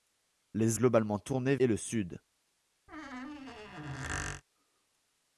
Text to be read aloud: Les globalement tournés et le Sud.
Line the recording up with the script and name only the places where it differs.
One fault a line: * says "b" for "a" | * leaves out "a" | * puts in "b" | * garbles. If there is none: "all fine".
all fine